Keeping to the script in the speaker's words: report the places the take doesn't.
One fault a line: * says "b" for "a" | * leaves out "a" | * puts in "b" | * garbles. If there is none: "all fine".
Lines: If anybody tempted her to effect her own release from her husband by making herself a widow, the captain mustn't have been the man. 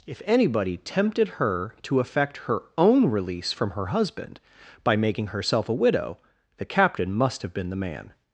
* says "must" for "mustn't"